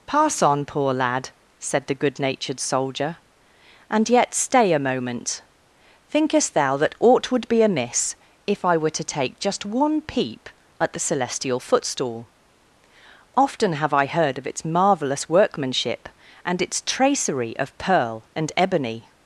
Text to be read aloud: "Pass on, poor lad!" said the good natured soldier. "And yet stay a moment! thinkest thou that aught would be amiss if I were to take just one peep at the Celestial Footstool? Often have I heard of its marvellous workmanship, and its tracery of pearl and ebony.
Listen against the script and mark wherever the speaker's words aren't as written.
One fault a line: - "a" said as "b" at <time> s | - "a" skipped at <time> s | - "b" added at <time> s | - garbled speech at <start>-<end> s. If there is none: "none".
none